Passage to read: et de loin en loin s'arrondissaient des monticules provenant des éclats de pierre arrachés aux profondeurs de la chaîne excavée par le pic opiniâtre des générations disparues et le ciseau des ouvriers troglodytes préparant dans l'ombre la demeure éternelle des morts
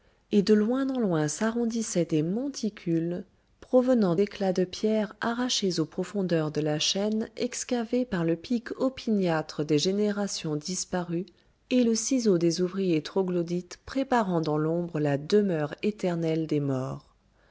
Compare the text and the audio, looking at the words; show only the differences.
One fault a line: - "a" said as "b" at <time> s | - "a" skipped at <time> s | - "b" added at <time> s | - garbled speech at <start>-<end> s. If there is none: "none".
- "des" skipped at 4.2 s